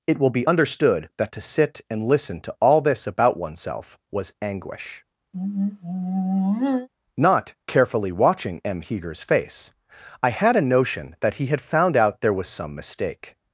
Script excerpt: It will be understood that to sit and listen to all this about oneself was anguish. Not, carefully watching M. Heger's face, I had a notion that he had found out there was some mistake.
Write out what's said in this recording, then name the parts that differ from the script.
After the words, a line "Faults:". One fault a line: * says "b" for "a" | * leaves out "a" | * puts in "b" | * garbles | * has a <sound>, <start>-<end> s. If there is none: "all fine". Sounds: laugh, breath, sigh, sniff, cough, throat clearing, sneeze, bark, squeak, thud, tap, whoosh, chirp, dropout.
It will be understood that to sit and listen to all this about oneself was anguish. Not, carefully watching M. Heger's face, I had a notion that he had found out there was some mistake.
Faults:
* has a sigh, 5.3-6.9 s